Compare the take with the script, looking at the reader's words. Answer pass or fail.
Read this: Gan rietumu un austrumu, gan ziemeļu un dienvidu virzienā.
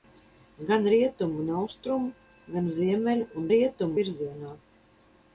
fail